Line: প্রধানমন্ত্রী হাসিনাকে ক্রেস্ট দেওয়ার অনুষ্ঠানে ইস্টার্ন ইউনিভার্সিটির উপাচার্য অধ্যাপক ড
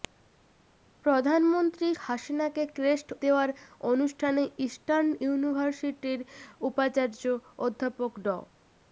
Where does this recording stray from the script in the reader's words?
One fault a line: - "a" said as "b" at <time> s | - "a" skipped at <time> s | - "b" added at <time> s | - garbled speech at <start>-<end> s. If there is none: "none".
none